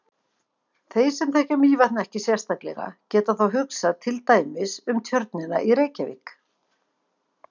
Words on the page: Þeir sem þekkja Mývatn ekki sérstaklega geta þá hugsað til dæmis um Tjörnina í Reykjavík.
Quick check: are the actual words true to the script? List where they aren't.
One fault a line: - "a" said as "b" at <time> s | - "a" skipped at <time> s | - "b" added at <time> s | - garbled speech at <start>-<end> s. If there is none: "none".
none